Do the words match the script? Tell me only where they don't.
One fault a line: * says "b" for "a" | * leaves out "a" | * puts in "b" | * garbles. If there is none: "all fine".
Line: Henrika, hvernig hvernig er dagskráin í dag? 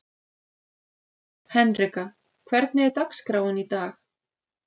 * leaves out "hvernig"